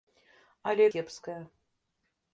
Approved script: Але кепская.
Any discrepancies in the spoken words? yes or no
no